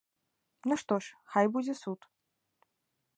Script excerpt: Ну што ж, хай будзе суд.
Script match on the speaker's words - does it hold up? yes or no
yes